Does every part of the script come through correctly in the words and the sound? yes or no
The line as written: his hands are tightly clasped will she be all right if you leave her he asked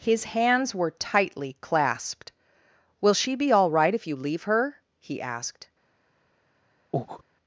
no